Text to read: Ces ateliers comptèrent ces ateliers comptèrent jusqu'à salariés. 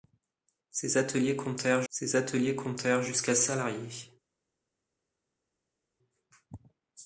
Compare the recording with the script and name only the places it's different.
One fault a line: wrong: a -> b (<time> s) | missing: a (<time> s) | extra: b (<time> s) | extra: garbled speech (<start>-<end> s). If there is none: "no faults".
no faults